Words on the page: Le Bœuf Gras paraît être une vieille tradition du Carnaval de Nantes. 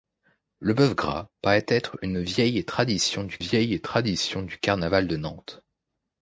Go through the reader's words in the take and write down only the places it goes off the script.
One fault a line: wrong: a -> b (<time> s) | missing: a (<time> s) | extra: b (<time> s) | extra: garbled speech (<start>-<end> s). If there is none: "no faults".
extra: vieille tradition du (3.4 s)